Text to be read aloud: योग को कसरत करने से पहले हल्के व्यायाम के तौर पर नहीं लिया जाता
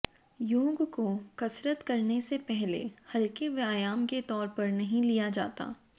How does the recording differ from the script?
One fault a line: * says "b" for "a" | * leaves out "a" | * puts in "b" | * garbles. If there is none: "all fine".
all fine